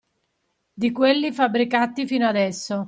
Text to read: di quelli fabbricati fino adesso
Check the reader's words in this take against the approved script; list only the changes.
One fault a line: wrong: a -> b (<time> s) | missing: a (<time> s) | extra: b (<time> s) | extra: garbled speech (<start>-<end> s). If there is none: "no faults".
no faults